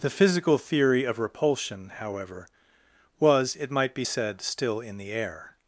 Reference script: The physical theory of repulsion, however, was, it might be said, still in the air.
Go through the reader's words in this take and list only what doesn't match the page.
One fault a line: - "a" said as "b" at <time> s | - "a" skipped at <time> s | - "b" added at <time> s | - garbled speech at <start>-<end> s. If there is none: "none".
none